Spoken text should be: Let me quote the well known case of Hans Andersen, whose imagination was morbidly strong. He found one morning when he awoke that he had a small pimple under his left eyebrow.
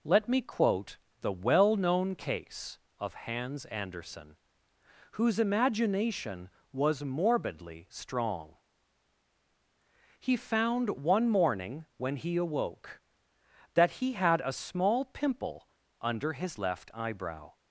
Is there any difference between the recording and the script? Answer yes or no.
no